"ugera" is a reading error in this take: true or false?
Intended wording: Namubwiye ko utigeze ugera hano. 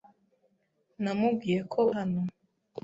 true